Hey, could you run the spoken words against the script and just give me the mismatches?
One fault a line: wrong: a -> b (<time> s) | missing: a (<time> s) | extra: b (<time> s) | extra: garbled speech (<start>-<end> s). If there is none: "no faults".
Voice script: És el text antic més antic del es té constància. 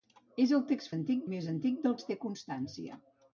no faults